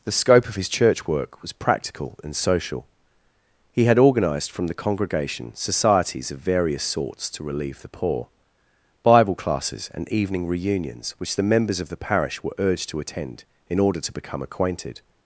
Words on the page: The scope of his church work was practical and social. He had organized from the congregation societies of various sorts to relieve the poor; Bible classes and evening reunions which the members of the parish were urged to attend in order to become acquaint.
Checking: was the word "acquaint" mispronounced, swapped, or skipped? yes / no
yes